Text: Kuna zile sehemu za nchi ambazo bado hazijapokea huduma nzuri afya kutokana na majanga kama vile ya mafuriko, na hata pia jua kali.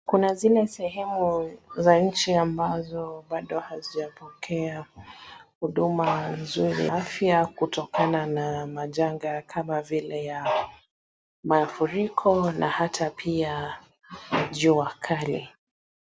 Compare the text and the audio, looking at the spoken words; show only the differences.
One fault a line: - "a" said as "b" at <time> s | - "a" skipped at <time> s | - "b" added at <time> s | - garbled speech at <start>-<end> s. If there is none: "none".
none